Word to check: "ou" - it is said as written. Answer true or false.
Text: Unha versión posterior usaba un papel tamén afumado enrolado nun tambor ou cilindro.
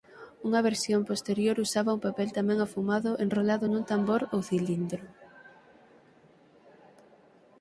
true